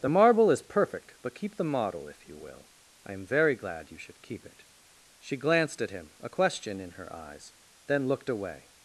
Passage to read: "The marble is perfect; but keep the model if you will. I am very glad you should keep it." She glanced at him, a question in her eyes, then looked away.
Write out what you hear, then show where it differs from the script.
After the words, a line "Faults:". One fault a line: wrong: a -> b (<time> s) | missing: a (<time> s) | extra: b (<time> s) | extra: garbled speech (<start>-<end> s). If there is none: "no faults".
"The marble is perfect; but keep the model if you will. I am very glad you should keep it." She glanced at him, a question in her eyes, then looked away.
Faults:
no faults